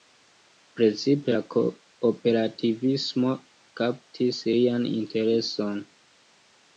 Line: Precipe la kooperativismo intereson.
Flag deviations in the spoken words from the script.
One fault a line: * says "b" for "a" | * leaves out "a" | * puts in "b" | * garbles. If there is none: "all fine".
* puts in "kaptis lian"